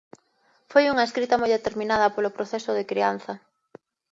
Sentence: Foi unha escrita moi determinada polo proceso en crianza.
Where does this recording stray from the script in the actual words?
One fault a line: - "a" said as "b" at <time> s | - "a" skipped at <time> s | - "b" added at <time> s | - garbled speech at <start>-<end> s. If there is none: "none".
- "en" said as "de" at 2.8 s